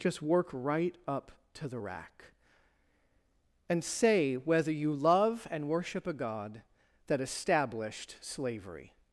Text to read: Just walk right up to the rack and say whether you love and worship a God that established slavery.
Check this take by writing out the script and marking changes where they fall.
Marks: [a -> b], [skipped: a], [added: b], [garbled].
Just [walk -> work] right up to the rack and say whether you love and worship a God that established slavery.